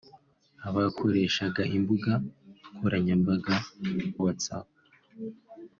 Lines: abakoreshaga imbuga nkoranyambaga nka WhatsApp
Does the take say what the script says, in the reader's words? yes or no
no